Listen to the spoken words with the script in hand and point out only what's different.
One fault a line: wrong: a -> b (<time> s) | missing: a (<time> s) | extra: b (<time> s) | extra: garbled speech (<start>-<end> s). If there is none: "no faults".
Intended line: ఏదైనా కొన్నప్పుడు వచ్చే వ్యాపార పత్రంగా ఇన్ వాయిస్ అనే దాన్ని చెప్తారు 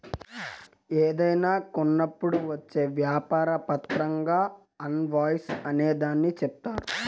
no faults